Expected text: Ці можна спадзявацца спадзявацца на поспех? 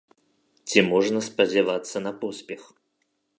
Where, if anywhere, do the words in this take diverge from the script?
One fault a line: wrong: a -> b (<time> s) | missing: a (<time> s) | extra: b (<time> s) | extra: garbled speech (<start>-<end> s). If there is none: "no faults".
missing: спадзявацца (2.0 s)